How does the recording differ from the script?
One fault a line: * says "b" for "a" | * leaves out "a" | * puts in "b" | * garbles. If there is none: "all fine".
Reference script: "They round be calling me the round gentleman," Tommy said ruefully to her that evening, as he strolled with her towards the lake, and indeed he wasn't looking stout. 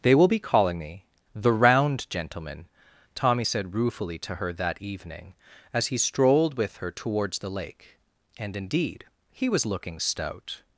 * says "will" for "round"
* says "was" for "wasn't"